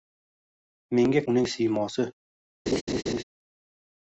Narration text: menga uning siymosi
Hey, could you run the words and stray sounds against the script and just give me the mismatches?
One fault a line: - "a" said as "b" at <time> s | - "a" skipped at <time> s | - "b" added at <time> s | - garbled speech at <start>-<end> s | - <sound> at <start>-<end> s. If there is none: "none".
- laugh at 2.7-3.2 s